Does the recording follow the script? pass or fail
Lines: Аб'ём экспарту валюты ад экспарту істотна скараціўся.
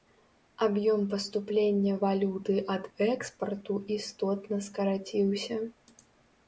fail